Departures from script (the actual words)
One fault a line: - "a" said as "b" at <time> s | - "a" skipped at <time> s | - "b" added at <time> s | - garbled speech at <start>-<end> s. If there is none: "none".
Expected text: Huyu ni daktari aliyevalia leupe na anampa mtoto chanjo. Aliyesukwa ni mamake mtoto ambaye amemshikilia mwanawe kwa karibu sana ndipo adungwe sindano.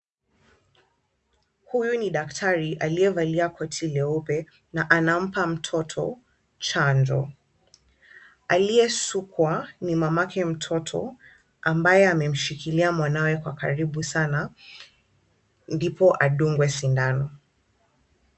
- "koti" added at 3.5 s